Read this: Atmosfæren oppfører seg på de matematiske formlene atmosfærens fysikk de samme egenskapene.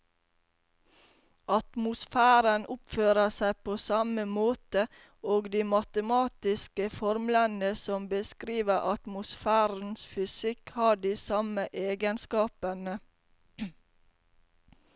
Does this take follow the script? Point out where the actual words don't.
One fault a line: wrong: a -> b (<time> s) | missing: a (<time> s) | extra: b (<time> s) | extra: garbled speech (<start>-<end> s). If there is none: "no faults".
extra: samme måte og (3.8 s)
extra: som beskriver (7.8 s)
extra: har (10.8 s)